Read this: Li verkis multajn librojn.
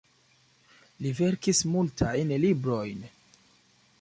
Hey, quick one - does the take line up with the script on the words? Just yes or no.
yes